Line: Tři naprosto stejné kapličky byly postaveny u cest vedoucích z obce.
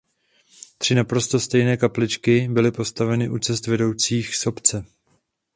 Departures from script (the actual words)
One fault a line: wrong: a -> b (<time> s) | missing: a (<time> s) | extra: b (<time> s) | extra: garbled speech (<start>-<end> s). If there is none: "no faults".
no faults